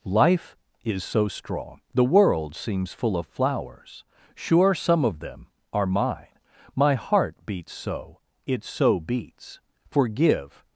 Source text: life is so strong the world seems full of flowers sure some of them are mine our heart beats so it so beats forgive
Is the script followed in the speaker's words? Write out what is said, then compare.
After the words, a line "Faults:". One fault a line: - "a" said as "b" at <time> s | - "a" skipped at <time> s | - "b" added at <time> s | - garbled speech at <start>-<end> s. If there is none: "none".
life is so strong the world seems full of flowers sure some of them are mine my heart beats so it so beats forgive
Faults:
- "our" said as "my" at 6.8 s